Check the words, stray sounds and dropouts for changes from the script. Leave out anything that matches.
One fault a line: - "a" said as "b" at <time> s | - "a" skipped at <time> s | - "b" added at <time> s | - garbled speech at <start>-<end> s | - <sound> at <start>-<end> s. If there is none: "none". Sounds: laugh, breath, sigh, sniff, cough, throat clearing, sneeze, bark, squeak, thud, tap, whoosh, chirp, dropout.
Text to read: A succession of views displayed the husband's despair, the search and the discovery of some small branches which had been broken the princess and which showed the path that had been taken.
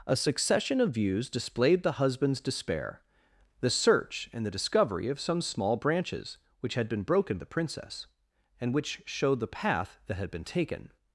none